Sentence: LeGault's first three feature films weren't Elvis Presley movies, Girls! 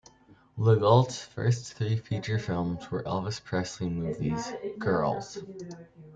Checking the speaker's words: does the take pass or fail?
fail